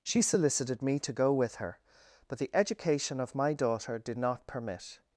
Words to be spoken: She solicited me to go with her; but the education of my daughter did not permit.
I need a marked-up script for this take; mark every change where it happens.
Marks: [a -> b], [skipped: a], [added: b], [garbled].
She solicited me to go with her; but the education of my daughter did not permit.